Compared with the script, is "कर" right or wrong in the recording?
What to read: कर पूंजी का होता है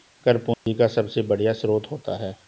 right